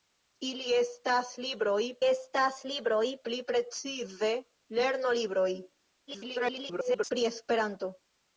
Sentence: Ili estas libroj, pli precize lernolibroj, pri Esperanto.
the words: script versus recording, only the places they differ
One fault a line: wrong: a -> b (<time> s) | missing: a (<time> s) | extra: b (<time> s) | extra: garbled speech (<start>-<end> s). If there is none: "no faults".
extra: estas libroj (2.1 s)
extra: garbled speech (6.1-7.1 s)